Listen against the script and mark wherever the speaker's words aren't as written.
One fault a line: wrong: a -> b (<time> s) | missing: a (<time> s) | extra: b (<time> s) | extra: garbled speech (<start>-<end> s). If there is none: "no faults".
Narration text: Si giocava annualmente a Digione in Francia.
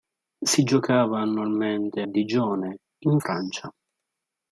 missing: a (2.0 s)